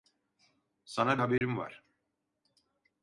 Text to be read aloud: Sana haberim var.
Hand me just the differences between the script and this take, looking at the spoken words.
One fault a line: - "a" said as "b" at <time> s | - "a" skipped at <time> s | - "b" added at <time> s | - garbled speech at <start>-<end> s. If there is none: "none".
none